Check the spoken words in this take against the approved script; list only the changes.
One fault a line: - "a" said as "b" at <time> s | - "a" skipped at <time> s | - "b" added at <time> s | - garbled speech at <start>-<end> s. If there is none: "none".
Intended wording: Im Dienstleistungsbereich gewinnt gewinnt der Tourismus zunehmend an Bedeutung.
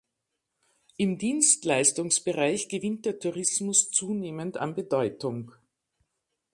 - "gewinnt" skipped at 3.0 s